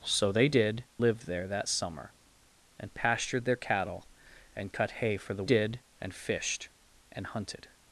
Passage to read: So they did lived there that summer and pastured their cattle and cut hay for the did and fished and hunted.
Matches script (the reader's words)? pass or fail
pass